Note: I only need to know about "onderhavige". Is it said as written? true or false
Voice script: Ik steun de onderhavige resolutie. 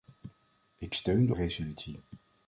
false